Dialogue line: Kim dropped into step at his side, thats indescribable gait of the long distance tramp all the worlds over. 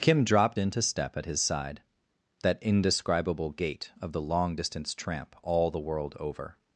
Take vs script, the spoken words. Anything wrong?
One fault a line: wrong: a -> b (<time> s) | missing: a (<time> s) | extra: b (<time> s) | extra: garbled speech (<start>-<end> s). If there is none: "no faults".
wrong: thats -> that (2.4 s)
wrong: worlds -> world (5.8 s)